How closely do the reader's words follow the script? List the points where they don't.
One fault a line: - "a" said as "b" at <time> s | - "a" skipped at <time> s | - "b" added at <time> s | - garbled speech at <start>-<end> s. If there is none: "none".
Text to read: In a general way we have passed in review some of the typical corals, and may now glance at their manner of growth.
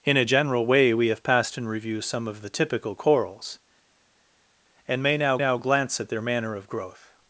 - "now" added at 5.4 s